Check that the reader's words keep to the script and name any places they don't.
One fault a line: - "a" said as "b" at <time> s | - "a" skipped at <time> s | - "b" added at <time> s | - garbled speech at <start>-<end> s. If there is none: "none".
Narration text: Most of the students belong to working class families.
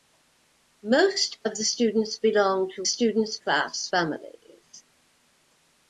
- "working" said as "students" at 2.8 s